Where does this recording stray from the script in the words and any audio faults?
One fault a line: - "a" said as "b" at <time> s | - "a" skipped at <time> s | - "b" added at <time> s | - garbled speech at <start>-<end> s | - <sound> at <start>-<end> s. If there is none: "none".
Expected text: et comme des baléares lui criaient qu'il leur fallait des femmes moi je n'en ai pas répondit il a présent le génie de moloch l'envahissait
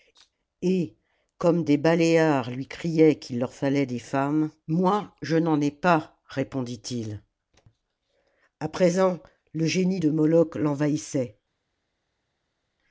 none